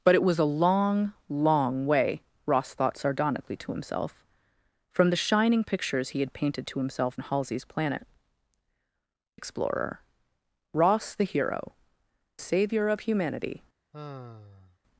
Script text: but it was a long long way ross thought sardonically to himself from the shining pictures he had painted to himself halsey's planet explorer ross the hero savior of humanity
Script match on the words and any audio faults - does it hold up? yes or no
no